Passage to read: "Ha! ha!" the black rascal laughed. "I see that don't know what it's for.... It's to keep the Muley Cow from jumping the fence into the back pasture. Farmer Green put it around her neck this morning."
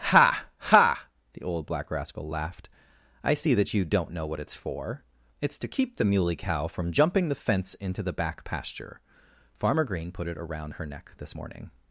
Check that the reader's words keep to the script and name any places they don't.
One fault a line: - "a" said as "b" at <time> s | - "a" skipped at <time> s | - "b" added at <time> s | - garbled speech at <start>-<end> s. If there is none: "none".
- "old" added at 1.4 s
- "you" added at 3.7 s